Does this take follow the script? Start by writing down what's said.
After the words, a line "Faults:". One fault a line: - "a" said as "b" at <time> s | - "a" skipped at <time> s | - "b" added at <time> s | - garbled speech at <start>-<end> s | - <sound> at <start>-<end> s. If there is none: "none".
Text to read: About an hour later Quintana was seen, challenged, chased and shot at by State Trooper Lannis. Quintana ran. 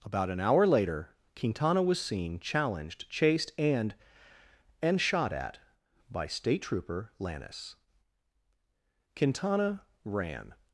About an hour later Quintana was seen, challenged, chased and and shot at by State Trooper Lannis. Quintana ran.
Faults:
- "and" added at 4.8 s